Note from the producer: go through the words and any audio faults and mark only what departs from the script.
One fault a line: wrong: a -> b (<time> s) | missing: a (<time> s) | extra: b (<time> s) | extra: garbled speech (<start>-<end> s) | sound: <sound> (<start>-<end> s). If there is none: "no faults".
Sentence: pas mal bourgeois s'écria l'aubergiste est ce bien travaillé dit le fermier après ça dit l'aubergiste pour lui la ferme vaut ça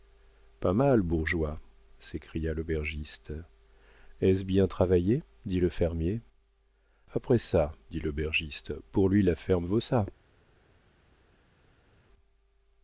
no faults